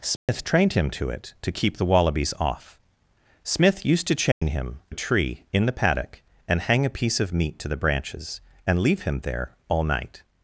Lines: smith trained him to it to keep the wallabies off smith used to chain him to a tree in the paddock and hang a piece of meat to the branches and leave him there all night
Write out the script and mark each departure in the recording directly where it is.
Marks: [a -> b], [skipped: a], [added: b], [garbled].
smith trained him to it to keep the wallabies off smith used to chain him [skipped: to] a tree in the paddock and hang a piece of meat to the branches and leave him there all night